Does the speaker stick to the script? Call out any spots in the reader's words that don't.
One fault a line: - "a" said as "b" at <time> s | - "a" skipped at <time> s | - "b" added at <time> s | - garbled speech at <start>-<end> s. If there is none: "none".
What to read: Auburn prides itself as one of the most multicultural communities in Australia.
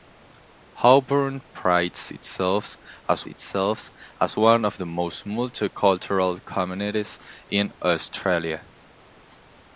- "itself as" added at 3.2 s